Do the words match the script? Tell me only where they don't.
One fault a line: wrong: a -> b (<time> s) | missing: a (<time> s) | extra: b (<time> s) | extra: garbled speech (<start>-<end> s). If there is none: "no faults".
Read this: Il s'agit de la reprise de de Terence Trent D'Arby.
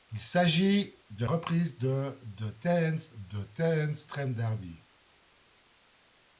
missing: la (1.3 s)
extra: de Terence (3.2 s)